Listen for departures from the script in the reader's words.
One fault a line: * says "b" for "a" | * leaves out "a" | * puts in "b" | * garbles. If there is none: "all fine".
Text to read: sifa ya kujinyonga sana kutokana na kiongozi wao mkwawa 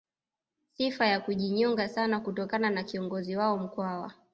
all fine